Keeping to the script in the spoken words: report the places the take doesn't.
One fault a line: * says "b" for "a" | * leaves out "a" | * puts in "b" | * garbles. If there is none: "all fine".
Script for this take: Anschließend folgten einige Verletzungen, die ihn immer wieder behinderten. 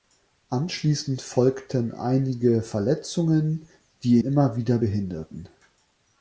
* leaves out "ihn"